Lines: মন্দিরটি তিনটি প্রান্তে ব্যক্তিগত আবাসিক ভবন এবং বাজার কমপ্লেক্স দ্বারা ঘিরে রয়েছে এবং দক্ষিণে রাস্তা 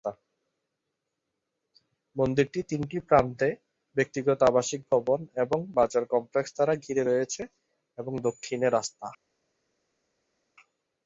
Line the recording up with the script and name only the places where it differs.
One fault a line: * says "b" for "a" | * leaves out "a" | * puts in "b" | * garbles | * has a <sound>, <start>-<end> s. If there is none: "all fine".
all fine